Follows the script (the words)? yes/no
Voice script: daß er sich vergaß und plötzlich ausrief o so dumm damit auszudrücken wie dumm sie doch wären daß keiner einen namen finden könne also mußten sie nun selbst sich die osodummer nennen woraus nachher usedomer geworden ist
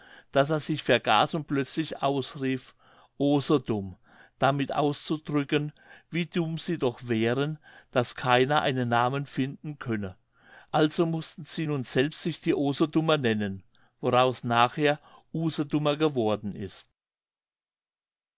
yes